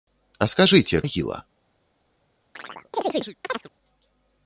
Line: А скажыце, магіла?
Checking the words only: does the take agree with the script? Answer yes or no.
yes